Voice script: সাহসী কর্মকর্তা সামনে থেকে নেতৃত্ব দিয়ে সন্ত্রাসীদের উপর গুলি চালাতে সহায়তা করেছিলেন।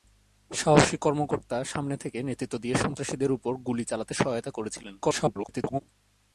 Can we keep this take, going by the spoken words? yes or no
no